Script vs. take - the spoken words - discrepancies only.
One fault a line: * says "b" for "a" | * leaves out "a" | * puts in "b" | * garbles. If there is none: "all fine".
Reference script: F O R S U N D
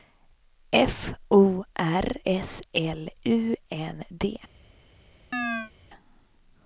* puts in "L"